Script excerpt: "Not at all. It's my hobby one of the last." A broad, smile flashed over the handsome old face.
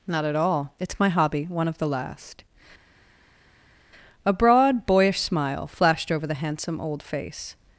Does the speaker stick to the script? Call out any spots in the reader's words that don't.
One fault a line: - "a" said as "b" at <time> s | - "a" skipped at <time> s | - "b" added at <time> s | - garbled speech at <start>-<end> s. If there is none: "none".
- "boyish" added at 4.9 s